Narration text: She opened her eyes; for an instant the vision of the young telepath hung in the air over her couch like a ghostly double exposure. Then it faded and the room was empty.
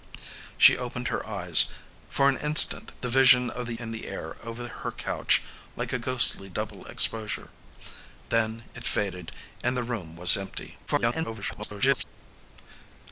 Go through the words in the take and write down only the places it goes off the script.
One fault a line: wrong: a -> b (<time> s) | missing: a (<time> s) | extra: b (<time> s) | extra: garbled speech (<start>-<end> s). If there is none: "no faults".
missing: young telepath hung (3.8 s)
extra: garbled speech (10.9-12.0 s)